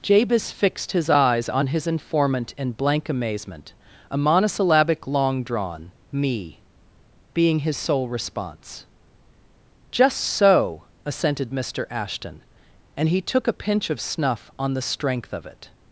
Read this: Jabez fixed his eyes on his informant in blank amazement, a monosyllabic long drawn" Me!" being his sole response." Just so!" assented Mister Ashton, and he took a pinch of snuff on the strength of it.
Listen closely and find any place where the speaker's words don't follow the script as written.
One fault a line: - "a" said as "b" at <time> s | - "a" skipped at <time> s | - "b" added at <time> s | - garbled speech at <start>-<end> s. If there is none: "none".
none